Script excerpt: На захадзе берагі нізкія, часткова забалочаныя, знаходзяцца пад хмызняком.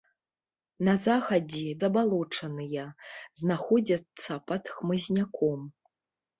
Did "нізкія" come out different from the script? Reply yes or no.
yes